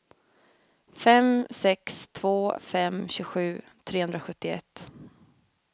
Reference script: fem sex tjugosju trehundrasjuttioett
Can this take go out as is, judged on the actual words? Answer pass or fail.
fail